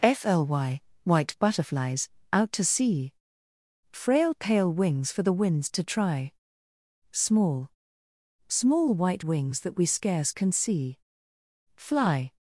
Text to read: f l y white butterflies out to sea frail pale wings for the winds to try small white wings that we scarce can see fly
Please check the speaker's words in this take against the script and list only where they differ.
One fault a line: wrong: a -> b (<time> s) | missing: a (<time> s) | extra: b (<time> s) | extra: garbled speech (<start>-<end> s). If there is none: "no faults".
extra: small (8.5 s)